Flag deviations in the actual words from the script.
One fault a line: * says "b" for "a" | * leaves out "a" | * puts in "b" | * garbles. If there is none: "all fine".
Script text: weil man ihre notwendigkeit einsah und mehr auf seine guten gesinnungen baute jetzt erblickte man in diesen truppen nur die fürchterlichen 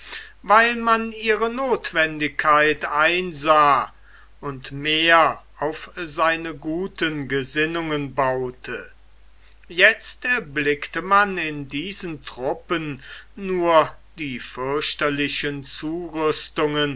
all fine